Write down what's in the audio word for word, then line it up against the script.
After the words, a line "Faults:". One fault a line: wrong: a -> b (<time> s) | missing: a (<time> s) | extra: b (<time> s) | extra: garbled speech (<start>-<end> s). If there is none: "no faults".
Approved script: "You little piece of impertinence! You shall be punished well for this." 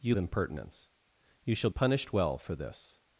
"You impertinence! You shall punished well for this."
Faults:
missing: little piece of (0.2 s)
missing: be (1.7 s)